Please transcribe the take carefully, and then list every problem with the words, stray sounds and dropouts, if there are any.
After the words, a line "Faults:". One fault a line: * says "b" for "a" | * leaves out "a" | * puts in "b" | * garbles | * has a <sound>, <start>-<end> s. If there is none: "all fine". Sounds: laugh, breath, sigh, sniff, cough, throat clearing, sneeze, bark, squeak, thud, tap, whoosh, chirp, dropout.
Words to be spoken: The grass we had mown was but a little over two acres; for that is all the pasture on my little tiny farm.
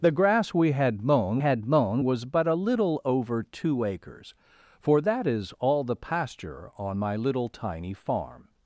The grass we had mown had mown was but a little over two acres; for that is all the pasture on my little tiny farm.
Faults:
* puts in "had mown"